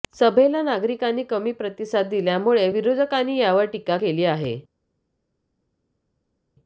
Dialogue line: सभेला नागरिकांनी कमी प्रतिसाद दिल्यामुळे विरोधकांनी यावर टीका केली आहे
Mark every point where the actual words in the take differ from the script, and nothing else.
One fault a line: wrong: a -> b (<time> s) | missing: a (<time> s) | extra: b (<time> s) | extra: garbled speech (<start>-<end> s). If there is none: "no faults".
no faults